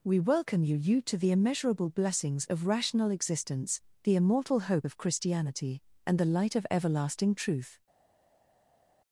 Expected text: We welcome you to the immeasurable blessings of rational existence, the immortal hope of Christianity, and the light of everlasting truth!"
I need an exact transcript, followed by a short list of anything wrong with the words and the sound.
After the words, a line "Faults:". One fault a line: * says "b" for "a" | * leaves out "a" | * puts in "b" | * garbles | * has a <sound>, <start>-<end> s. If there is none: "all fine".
We welcome you you to the immeasurable blessings of rational existence, the immortal hope of Christianity, and the light of everlasting truth!"
Faults:
* puts in "you"